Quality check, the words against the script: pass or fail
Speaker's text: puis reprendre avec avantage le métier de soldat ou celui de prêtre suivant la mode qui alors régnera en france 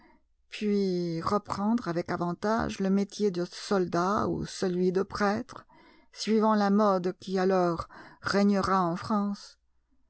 pass